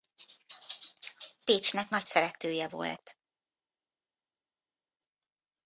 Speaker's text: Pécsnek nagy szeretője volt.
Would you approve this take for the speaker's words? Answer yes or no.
yes